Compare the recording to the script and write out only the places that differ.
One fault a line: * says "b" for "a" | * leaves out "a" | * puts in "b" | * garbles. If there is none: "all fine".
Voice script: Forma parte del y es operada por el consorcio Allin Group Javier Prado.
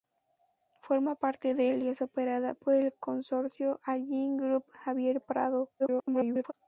* garbles